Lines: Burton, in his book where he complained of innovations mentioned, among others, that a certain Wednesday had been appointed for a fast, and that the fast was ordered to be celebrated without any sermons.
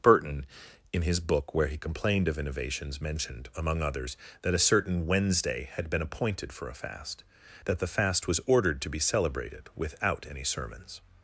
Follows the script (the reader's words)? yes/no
no